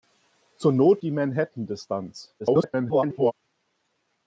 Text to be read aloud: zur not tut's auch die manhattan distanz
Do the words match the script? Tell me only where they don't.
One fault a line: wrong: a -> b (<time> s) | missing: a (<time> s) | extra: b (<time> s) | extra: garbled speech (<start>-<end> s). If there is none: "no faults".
missing: tut's auch (1.0 s)
extra: garbled speech (2.4-3.3 s)